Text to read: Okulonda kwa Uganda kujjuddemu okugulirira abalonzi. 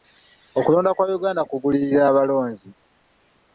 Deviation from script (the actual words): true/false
true